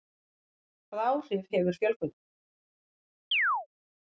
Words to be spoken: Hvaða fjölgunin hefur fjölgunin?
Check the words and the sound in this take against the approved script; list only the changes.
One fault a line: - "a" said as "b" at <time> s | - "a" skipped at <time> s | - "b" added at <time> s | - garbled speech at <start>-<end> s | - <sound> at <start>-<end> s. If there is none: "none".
- "fjölgunin" said as "áhrif" at 1.1 s
- chirp at 3.3-3.7 s